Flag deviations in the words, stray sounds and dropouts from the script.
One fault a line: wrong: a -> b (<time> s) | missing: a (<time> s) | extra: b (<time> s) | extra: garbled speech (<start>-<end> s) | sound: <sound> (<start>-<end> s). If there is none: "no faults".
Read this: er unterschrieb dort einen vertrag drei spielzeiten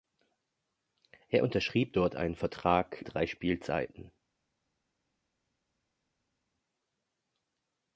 no faults